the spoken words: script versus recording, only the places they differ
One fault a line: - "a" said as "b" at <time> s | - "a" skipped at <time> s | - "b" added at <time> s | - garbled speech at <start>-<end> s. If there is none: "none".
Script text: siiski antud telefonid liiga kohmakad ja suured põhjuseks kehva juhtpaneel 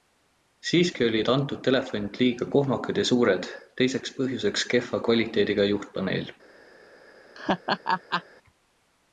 - "olid" added at 1.1 s
- "teiseks" added at 3.8 s
- "kvaliteediga" added at 5.1 s